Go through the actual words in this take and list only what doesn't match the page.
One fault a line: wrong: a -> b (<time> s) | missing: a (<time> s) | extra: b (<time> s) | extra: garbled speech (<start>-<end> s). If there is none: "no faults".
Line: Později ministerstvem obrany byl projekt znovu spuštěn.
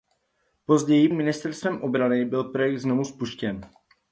no faults